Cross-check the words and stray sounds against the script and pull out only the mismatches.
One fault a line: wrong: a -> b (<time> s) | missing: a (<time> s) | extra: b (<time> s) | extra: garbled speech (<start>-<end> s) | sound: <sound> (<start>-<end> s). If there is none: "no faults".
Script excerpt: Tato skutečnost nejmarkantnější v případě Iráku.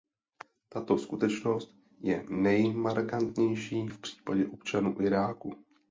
extra: je (2.0 s)
extra: občanů (4.5 s)